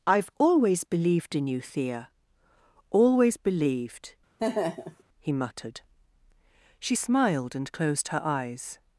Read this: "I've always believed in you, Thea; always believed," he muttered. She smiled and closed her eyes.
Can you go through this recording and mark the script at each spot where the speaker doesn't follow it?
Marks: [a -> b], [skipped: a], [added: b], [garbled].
"I've always believed in you, Thea; always believed," he muttered. She smiled and closed her eyes.